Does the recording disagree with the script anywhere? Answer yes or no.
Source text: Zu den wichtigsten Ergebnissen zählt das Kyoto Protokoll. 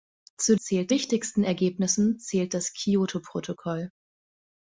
yes